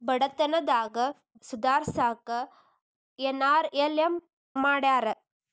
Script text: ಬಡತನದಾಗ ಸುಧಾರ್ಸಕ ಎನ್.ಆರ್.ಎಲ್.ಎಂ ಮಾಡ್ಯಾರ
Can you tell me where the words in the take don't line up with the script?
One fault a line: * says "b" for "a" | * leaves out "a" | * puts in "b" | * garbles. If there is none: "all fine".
all fine